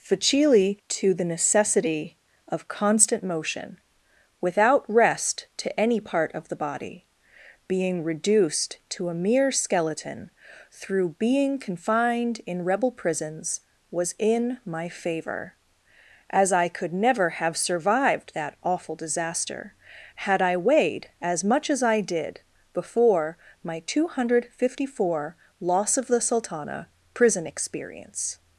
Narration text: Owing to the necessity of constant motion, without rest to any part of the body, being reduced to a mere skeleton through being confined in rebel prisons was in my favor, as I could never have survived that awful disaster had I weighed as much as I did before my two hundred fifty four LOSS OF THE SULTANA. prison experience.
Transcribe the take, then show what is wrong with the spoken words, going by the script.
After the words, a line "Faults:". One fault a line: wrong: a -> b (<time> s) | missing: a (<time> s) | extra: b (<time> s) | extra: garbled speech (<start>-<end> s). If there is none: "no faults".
Facili to the necessity of constant motion, without rest to any part of the body, being reduced to a mere skeleton through being confined in rebel prisons was in my favor, as I could never have survived that awful disaster had I weighed as much as I did before my two hundred fifty four LOSS OF THE SULTANA. prison experience.
Faults:
wrong: Owing -> Facili (0.0 s)